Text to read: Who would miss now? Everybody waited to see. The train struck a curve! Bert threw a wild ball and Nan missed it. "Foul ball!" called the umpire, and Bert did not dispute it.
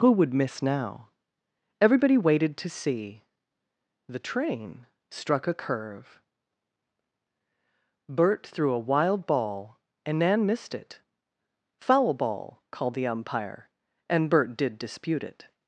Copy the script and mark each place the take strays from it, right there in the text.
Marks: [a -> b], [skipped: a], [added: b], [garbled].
Who would miss now? Everybody waited to see. The train struck a curve! Bert threw a wild ball and Nan missed it. "Foul ball!" called the umpire, and Bert did [skipped: not] dispute it.